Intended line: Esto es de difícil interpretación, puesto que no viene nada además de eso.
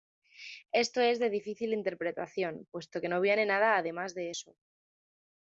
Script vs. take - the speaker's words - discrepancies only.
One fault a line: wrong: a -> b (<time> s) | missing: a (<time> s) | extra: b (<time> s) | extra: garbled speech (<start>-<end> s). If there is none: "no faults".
no faults